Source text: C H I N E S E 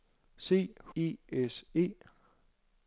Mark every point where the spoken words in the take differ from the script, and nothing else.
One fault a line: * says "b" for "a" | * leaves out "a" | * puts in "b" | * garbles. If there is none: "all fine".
* leaves out "H I N"